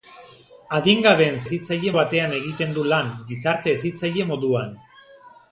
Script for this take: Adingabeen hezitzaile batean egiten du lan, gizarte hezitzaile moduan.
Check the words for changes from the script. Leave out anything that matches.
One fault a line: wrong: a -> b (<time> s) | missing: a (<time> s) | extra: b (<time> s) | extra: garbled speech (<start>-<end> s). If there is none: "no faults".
no faults